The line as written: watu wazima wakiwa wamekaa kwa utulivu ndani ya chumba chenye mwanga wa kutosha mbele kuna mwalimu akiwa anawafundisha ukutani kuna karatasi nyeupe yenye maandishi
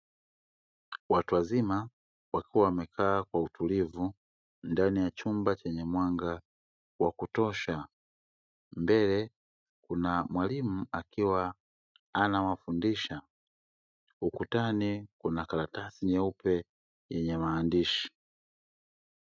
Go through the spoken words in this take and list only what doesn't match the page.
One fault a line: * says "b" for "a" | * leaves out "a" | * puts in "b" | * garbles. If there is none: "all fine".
all fine